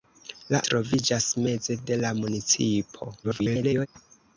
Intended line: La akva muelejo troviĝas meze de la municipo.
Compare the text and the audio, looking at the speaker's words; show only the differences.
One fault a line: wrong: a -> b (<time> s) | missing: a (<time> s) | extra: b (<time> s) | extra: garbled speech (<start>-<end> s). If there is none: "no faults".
missing: akva muelejo (0.6 s)
extra: garbled speech (3.2-3.9 s)